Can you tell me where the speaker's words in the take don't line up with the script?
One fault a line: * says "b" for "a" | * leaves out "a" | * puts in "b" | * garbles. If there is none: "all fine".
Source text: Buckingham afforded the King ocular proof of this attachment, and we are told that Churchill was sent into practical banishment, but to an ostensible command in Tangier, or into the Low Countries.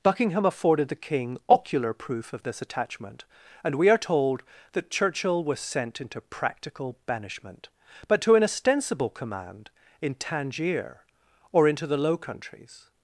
all fine